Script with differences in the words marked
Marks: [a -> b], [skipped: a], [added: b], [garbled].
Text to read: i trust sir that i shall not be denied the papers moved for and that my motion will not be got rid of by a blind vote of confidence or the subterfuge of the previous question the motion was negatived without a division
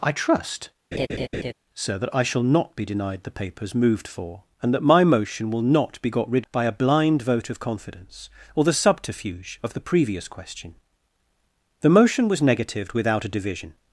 i trust sir that i shall not be denied the papers moved for and that my motion will not be got rid [skipped: of] by a blind vote of confidence or the subterfuge of the previous question the motion was negatived without a division